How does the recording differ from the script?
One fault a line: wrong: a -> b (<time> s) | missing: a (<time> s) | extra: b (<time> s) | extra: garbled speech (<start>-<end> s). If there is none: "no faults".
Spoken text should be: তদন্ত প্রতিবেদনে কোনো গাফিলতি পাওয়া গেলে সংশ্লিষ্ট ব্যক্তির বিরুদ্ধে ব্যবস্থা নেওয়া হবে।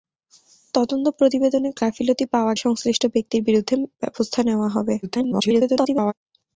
missing: কোনো (1.7 s)
missing: গেলে (2.5 s)
extra: garbled speech (5.0-6.1 s)